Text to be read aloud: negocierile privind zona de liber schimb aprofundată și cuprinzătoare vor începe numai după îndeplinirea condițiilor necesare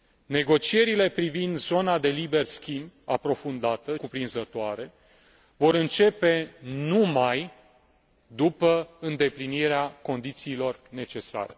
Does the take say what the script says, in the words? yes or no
no